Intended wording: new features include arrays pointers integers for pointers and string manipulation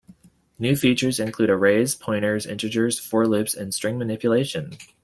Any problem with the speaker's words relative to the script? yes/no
yes